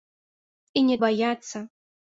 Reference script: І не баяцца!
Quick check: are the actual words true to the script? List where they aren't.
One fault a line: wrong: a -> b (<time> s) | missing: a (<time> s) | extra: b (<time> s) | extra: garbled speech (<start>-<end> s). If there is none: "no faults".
no faults